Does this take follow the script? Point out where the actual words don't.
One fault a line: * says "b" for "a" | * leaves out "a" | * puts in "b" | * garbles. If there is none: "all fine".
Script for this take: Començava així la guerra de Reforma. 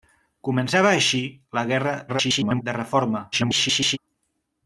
* garbles
* garbles